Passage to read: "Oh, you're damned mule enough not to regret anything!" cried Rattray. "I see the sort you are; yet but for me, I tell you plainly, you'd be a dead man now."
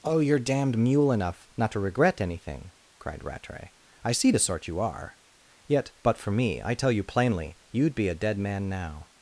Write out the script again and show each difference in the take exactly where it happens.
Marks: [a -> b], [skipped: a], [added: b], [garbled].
"Oh, you're damned mule enough not to regret anything!" cried Rattray. "I see the sort you are; yet but for me, I tell you plainly, you'd be a dead man now."